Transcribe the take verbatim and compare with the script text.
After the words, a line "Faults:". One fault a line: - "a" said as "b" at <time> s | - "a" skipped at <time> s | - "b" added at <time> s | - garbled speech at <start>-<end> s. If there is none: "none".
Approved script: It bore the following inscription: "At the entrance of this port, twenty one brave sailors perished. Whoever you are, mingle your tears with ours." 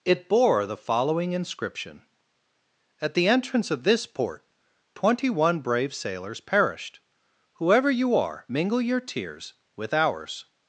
It bore the following inscription: "At the entrance of this port, twenty one brave sailors perished. Whoever you are, mingle your tears with ours."
Faults:
none